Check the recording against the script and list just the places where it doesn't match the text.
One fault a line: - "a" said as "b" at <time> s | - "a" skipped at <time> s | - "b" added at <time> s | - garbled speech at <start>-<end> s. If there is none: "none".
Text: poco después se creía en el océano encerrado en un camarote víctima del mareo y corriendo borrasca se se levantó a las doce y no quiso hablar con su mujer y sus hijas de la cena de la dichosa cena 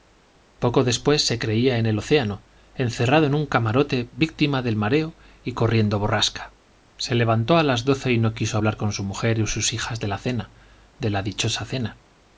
- "se" skipped at 7.1 s